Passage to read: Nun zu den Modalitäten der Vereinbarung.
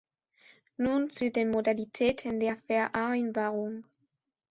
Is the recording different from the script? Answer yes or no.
no